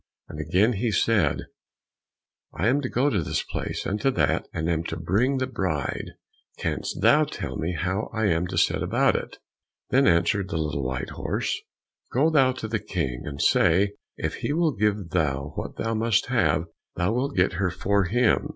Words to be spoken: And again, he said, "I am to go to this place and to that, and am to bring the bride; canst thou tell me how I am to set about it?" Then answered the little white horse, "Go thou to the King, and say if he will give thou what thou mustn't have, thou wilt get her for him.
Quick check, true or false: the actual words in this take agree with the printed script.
false